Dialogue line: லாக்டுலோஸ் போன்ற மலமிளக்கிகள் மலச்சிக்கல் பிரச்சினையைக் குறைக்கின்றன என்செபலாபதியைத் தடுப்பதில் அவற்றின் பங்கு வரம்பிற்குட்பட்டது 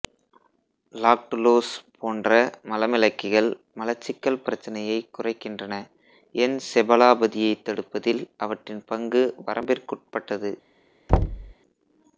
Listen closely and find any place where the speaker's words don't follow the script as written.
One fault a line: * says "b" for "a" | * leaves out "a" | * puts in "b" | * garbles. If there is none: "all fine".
all fine